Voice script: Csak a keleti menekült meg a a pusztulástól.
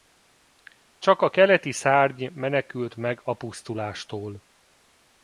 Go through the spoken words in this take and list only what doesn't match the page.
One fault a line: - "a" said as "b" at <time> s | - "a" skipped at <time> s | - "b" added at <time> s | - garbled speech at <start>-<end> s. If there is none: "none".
- "szárny" added at 1.7 s
- "a" skipped at 3.3 s